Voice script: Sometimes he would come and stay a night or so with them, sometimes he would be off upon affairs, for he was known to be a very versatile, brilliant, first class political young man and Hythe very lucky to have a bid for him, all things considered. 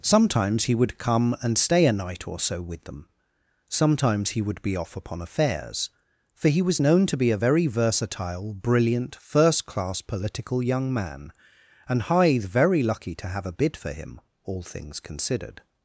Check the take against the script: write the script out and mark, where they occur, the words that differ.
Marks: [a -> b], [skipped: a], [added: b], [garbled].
Sometimes he would come and stay a night or so with them, sometimes he would be off upon affairs, for he was known to be a very versatile, brilliant, first class political young man and Hythe very lucky to have a bid for him, all things considered.